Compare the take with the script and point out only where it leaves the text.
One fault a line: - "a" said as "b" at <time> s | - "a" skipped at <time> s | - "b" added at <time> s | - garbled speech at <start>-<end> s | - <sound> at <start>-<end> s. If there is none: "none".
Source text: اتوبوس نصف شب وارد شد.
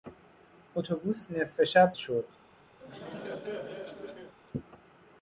- "وارد" skipped at 1.9 s
- laugh at 2.8-4.3 s